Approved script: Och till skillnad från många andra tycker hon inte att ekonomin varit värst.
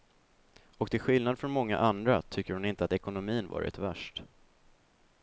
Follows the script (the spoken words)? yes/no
yes